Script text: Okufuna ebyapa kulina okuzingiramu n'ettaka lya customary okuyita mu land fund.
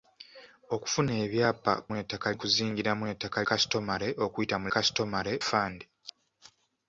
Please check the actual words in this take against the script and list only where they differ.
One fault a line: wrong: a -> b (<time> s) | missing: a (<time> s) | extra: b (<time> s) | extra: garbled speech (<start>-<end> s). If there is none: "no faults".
wrong: kulina -> n'ettaka (1.9 s)
missing: lya (3.4 s)
wrong: land -> customary (4.7 s)